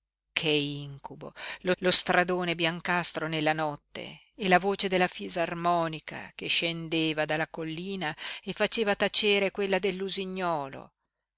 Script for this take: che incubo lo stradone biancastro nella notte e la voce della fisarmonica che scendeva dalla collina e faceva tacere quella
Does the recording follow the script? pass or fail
fail